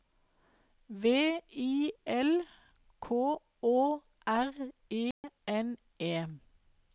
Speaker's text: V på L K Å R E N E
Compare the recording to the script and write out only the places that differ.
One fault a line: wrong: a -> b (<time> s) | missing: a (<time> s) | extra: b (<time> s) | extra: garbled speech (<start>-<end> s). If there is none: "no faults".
wrong: på -> I (1.6 s)